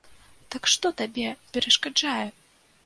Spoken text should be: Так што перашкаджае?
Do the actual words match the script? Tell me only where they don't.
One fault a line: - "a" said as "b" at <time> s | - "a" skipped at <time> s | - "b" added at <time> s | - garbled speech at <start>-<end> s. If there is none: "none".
- "табе" added at 1.0 s